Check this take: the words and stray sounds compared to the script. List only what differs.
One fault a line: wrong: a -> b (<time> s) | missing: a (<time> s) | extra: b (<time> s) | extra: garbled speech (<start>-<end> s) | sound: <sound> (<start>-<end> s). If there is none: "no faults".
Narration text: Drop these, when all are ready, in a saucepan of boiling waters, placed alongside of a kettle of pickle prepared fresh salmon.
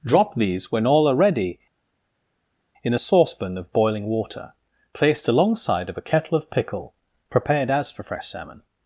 wrong: waters -> water (4.0 s)
extra: as for (7.7 s)